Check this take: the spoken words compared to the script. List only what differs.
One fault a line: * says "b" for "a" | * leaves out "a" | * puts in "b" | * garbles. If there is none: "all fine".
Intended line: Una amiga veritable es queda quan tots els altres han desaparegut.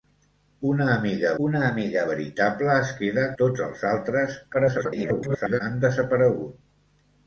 * puts in "una amiga"
* leaves out "quan"
* garbles